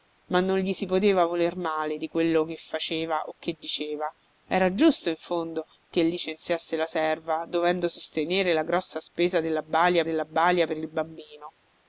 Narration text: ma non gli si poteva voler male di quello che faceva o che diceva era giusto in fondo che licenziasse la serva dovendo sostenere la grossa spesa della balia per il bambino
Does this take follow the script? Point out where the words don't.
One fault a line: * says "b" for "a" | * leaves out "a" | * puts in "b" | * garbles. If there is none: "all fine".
* puts in "della balia"